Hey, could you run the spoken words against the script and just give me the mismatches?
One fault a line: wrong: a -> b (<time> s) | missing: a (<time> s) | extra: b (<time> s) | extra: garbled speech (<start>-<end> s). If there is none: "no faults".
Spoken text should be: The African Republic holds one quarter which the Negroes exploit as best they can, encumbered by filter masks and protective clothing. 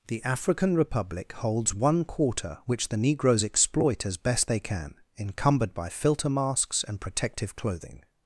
no faults